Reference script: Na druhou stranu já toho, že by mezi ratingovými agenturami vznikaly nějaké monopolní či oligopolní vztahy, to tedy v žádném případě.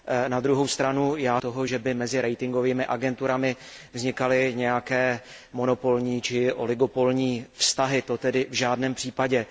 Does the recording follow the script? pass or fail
pass